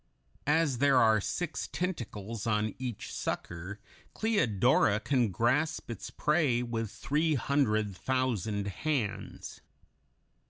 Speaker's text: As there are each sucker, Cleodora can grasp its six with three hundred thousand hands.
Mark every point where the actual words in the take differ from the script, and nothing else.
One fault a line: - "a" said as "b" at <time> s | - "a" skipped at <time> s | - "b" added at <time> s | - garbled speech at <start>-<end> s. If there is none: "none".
- "six tentacles on" added at 1.2 s
- "six" said as "prey" at 6.1 s